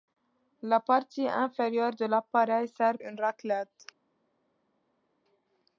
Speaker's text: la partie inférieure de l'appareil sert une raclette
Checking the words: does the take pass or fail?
pass